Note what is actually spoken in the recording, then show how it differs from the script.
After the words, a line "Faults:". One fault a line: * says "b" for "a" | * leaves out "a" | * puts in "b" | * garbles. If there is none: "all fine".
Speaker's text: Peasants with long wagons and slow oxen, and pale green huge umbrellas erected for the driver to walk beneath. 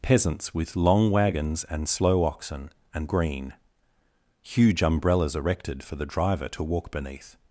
Peasants with long wagons and slow oxen, and green huge umbrellas erected for the driver to walk beneath.
Faults:
* leaves out "pale"